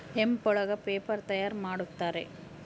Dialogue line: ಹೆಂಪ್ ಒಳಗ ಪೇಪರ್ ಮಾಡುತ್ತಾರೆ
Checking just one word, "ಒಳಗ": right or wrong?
right